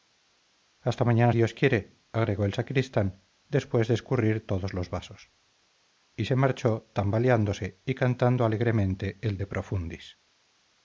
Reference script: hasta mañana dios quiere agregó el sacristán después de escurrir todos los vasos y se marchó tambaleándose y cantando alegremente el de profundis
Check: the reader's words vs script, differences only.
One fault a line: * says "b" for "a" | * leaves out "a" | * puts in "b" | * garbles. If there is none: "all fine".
all fine